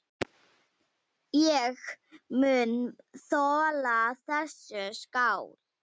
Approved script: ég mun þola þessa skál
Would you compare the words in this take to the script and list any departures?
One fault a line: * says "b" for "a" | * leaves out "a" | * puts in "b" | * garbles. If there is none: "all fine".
all fine